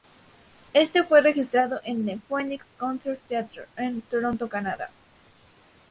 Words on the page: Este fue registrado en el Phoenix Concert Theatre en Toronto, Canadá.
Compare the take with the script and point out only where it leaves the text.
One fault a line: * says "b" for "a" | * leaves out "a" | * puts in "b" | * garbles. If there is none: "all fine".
all fine